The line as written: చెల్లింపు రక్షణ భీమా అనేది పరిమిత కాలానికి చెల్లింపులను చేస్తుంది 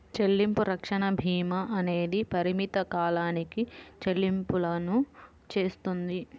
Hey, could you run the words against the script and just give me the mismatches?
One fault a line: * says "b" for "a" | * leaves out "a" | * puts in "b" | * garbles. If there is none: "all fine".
all fine